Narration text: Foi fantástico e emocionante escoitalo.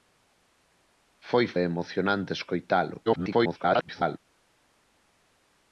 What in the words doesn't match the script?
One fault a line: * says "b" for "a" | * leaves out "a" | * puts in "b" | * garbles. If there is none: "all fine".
* leaves out "fantástico"
* garbles